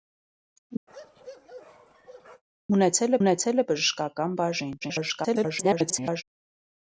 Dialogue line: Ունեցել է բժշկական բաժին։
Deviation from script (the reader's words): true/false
true